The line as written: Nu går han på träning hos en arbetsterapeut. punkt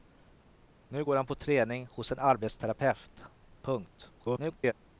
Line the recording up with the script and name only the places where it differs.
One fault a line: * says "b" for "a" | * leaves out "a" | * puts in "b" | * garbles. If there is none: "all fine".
* garbles